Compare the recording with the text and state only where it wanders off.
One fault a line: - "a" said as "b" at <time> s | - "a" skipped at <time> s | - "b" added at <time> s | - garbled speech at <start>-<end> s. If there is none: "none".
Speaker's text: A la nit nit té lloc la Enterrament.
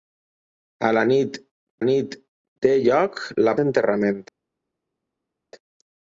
none